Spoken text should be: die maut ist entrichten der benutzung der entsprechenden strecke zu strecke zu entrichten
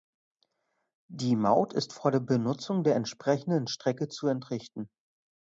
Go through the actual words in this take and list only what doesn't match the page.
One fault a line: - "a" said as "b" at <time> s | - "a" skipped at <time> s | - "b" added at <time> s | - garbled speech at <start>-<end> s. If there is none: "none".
- "entrichten" said as "vor" at 1.9 s
- "strecke zu" skipped at 4.2 s